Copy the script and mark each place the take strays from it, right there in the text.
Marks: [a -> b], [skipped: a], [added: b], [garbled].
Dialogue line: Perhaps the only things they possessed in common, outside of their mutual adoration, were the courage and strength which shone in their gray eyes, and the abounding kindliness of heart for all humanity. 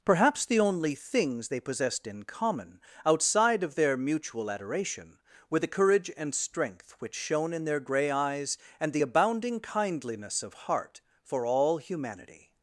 Perhaps the only things they possessed in common, outside of their mutual adoration, were the courage and strength which shone in their gray eyes, and the abounding kindliness of heart for all humanity.